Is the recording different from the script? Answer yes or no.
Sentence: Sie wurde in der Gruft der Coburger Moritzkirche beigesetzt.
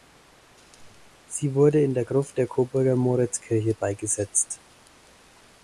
no